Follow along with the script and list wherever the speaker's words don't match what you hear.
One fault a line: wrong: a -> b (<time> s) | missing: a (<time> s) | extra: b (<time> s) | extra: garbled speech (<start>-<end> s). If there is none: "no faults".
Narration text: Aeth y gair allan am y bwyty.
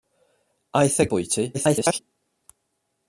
missing: gair allan am (1.1 s)
extra: garbled speech (1.5-2.0 s)